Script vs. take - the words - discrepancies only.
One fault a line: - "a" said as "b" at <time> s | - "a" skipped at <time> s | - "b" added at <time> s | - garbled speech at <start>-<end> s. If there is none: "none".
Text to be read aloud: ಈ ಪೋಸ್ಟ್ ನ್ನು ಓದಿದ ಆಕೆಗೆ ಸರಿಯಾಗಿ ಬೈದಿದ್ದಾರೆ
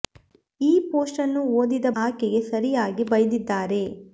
none